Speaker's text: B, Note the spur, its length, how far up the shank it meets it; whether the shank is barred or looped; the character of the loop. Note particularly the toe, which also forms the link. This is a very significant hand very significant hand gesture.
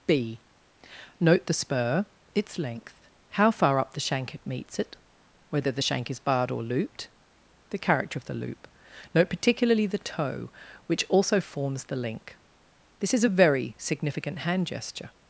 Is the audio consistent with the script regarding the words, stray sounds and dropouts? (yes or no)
no